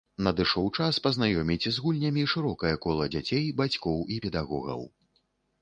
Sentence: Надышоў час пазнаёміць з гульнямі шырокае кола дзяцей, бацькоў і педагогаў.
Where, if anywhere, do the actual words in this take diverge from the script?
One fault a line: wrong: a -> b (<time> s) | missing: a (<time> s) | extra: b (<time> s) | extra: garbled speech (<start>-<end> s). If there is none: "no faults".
no faults